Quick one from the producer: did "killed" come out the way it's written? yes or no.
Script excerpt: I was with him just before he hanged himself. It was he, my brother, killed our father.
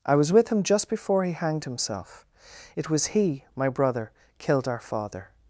yes